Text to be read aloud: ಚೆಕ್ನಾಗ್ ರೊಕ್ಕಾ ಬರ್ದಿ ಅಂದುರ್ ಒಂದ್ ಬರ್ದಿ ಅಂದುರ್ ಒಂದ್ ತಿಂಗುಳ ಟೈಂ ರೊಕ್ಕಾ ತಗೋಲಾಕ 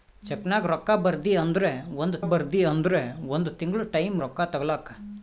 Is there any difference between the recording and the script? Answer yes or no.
no